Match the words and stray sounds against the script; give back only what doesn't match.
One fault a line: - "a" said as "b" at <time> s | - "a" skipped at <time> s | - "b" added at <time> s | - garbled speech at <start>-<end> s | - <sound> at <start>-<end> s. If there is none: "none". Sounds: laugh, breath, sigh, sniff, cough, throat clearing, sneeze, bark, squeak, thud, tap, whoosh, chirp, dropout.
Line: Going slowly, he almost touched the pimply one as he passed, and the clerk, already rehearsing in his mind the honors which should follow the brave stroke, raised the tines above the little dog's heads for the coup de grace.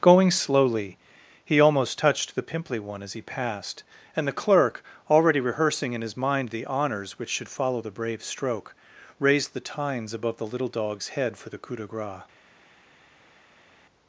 - "heads" said as "head" at 11.1 s